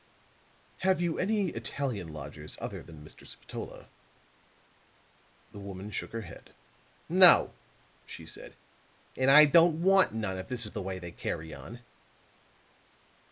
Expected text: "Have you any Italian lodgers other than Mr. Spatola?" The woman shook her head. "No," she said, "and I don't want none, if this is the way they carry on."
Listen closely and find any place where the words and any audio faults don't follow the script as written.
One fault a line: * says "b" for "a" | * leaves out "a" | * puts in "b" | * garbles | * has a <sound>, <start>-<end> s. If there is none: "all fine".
all fine